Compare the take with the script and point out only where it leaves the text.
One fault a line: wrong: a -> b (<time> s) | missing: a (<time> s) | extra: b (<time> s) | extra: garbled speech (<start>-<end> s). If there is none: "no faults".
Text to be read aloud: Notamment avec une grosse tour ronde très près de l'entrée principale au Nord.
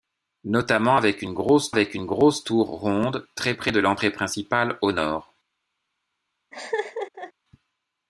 extra: avec une grosse (1.7 s)